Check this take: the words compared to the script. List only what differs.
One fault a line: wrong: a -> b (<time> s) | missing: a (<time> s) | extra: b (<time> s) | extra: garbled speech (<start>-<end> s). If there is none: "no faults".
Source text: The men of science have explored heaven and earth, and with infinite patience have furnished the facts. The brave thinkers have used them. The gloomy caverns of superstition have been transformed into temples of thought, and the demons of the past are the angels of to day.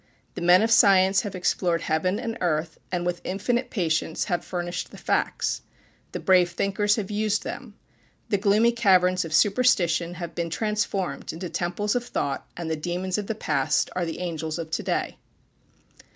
no faults